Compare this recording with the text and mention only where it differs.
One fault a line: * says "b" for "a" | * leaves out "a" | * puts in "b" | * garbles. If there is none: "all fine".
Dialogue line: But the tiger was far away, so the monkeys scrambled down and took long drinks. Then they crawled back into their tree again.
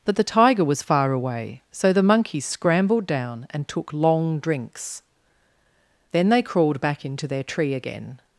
all fine